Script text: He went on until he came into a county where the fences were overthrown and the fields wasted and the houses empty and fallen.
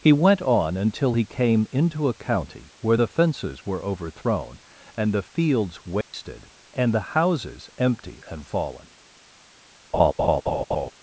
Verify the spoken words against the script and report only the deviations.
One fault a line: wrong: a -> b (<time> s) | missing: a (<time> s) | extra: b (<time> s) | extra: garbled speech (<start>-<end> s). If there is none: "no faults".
no faults